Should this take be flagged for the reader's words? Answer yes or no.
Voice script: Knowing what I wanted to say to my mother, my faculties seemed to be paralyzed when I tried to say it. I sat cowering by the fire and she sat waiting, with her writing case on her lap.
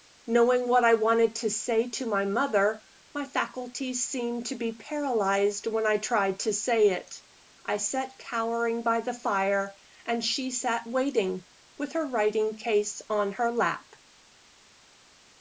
no